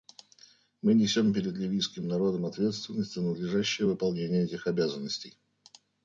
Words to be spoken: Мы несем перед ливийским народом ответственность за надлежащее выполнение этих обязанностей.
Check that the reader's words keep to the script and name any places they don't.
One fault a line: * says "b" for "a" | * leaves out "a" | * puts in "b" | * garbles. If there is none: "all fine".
all fine